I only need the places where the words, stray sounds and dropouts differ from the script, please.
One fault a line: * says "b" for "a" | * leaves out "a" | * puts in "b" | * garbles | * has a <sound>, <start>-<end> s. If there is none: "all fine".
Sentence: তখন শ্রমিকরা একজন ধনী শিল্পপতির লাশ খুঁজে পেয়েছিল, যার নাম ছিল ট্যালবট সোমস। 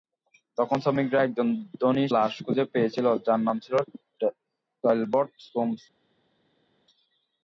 * leaves out "শিল্পপতির"